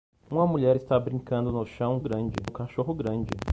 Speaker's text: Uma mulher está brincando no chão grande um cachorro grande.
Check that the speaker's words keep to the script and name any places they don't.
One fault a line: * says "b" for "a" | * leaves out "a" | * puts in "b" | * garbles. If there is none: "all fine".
all fine